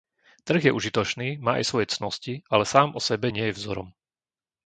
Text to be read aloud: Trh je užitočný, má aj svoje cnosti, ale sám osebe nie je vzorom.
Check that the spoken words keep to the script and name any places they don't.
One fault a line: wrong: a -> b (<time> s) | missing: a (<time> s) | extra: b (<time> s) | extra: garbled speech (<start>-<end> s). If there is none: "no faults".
no faults